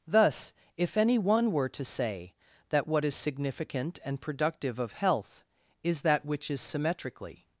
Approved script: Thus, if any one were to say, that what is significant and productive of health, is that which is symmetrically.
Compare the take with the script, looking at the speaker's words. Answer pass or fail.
pass